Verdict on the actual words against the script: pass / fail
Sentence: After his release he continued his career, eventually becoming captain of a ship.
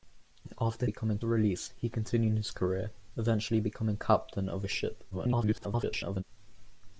fail